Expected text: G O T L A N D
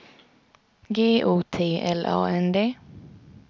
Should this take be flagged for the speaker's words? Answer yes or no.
no